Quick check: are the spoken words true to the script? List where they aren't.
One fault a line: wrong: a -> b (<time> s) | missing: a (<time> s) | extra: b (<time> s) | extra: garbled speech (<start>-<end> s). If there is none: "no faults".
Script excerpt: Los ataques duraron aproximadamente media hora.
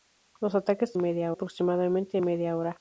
wrong: duraron -> media (0.9 s)